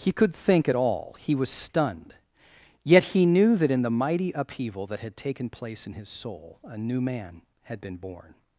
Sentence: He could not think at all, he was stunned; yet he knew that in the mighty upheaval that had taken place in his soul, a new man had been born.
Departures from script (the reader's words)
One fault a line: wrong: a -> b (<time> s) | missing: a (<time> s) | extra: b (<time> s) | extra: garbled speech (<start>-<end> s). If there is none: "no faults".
missing: not (0.3 s)